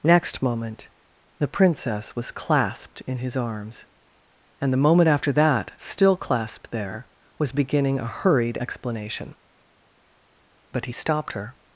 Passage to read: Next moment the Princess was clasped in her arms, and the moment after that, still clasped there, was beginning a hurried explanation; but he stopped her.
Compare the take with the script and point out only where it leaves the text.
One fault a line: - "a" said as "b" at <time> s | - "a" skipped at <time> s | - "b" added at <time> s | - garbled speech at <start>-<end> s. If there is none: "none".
- "her" said as "his" at 3.2 s